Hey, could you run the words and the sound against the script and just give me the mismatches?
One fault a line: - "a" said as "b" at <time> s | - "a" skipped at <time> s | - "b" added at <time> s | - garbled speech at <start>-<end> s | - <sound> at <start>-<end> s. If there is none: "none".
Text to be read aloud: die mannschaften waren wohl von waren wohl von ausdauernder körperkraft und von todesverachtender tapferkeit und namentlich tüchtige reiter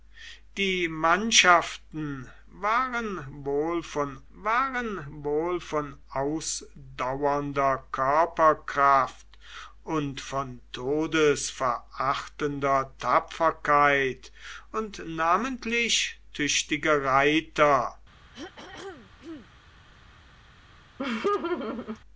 - throat clearing at 18.3-19.5 s
- laugh at 21.0-22.0 s